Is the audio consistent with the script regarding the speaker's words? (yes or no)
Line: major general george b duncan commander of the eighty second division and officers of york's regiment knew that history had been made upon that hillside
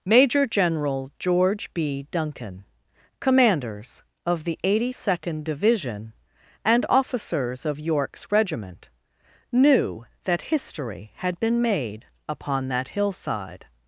no